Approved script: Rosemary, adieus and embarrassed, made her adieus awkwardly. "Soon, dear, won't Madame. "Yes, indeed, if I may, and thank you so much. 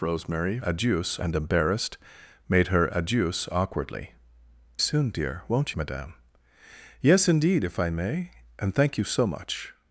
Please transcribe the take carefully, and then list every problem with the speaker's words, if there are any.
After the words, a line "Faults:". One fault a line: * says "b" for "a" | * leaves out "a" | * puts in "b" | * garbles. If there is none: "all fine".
Rosemary, adieus and embarrassed, made her adieus awkwardly. "Soon, dear, won't Madame. "Yes, indeed, if I may, and thank you so much.
Faults:
all fine